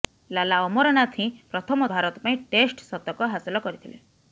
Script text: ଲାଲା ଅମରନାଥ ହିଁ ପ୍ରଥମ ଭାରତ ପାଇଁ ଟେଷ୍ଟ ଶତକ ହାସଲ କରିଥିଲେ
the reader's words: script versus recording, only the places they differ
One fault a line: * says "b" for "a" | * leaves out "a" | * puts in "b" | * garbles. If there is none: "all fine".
all fine